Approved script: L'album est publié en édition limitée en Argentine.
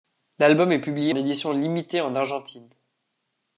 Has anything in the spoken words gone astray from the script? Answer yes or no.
yes